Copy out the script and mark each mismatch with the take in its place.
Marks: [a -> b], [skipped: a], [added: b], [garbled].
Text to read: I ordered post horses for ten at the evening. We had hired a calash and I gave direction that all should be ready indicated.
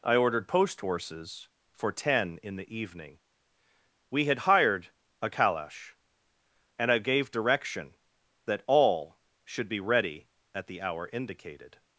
I ordered post horses for ten [at -> in] the evening. We had hired a calash and I gave direction that all should be ready [added: at the hour] indicated.